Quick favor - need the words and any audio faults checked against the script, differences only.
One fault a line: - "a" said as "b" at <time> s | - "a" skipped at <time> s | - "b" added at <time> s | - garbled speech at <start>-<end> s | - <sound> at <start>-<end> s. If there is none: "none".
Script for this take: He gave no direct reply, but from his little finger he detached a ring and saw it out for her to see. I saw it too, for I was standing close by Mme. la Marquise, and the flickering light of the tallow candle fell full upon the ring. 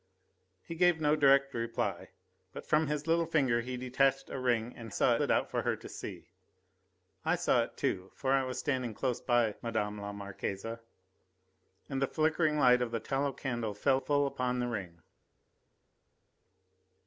none